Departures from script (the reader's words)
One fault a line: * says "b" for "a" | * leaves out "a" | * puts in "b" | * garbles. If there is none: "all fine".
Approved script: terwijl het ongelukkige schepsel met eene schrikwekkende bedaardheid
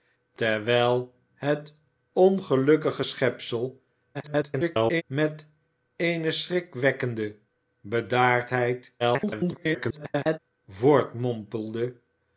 * garbles
* garbles